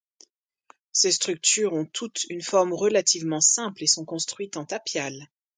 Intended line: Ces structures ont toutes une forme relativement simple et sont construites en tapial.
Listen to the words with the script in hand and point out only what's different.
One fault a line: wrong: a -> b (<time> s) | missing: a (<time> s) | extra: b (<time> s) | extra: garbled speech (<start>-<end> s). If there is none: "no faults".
no faults